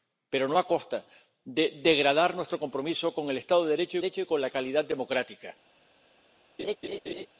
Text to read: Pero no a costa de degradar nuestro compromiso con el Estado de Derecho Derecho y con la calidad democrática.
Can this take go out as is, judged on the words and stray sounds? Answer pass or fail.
fail